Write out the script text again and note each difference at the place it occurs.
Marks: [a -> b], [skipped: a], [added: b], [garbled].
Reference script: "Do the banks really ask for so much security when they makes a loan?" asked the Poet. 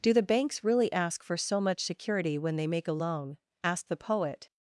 "Do the banks really ask for so much security when they [makes -> make] a loan?" asked the Poet.